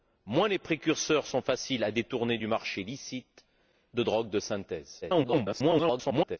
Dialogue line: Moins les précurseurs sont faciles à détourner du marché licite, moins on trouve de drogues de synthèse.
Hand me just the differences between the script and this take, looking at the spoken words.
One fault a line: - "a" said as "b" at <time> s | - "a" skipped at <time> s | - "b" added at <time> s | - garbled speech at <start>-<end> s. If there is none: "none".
- "moins on trouve" skipped at 3.5 s
- garbled speech at 5.0-6.4 s